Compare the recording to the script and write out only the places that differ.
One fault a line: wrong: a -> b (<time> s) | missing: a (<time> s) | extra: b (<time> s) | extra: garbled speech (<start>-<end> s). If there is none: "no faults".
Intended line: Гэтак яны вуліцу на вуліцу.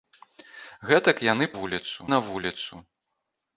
no faults